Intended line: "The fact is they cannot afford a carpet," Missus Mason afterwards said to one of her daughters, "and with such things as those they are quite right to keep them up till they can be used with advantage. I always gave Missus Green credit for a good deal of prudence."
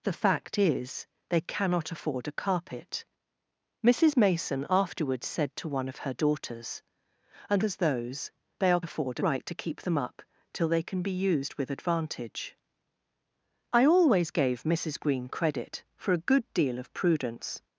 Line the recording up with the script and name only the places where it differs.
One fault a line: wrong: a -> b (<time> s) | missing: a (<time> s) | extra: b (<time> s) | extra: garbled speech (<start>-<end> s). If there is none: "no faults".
missing: with such things (7.6 s)
wrong: quite -> afford (8.8 s)